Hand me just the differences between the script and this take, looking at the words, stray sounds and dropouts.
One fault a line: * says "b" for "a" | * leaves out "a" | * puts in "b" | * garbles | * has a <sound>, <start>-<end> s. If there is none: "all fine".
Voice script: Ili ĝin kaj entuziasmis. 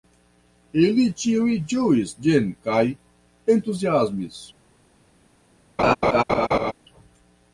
* puts in "ĉiuj ĝuis"
* has a laugh, 5.8-6.7 s